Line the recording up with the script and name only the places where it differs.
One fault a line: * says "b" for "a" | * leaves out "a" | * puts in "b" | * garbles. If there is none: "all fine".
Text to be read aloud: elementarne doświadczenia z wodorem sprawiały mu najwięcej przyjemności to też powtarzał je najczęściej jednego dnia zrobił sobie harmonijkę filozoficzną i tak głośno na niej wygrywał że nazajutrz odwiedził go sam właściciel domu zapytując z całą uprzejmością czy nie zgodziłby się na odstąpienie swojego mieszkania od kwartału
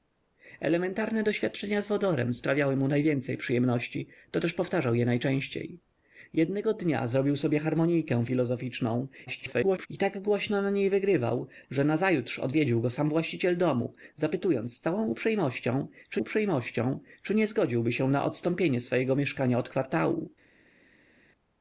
* garbles
* puts in "uprzejmością czy"